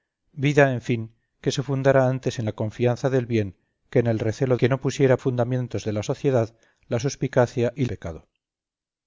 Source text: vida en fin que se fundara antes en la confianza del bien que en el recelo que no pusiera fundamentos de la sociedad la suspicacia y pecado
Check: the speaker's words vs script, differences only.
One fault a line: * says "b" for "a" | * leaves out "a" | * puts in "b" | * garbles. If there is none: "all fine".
all fine